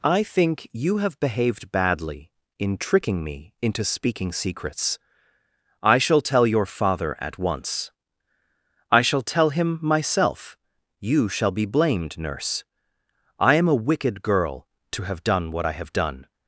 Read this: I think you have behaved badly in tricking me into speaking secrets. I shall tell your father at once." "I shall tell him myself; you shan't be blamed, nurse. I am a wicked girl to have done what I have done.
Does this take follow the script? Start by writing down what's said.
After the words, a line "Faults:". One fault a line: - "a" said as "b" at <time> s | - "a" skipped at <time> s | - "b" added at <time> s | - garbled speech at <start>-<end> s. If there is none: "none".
I think you have behaved badly in tricking me into speaking secrets. I shall tell your father at once." "I shall tell him myself; you shall be blamed, nurse. I am a wicked girl to have done what I have done.
Faults:
- "shan't" said as "shall" at 11.3 s